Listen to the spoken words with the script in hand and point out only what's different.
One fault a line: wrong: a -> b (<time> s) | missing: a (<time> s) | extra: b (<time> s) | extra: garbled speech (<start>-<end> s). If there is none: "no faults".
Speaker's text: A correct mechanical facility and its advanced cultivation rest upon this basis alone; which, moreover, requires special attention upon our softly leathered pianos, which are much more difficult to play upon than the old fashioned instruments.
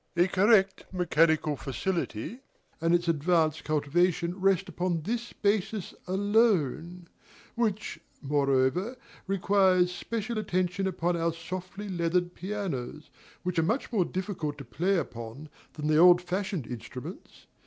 no faults